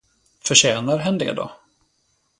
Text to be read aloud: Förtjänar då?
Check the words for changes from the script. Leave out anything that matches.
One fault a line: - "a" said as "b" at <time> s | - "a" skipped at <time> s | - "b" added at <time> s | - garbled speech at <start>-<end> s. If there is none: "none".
- "hen det" added at 1.0 s